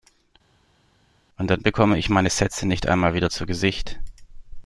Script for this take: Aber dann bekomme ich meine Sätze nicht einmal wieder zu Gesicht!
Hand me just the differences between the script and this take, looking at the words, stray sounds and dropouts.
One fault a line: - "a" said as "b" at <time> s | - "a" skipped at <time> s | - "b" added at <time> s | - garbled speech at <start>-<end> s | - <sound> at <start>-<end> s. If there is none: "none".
- "Aber" said as "Und" at 1.4 s